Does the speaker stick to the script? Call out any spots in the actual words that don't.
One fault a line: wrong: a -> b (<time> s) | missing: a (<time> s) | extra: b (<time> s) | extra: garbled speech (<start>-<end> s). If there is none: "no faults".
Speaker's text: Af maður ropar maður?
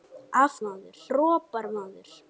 no faults